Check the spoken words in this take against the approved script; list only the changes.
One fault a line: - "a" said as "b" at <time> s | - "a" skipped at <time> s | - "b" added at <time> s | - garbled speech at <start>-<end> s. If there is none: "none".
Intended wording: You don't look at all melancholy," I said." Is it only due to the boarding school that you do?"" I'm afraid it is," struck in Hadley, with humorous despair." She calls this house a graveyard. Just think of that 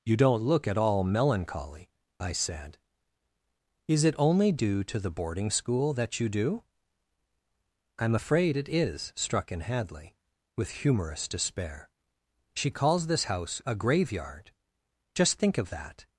none